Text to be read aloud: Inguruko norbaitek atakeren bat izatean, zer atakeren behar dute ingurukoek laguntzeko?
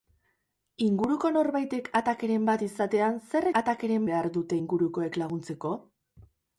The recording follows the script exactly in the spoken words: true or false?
true